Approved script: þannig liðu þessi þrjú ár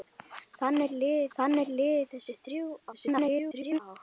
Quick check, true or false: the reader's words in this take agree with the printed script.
false